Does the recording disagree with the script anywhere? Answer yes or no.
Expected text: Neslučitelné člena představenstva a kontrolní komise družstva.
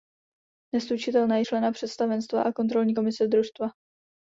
no